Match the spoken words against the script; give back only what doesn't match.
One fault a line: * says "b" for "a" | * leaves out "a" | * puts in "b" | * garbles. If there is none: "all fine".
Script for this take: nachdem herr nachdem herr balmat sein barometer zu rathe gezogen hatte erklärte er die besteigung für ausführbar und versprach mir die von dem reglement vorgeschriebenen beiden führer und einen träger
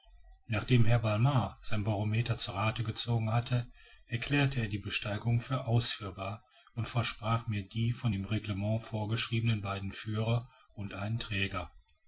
* leaves out "nachdem herr"